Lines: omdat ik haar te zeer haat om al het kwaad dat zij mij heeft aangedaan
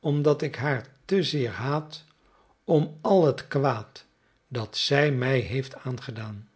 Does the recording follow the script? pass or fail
pass